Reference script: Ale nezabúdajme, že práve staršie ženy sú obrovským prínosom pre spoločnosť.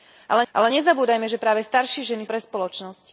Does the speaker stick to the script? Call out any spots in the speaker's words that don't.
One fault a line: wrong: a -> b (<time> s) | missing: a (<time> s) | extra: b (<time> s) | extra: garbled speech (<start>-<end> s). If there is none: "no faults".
extra: ale (0.5 s)
missing: sú obrovským prínosom (2.2 s)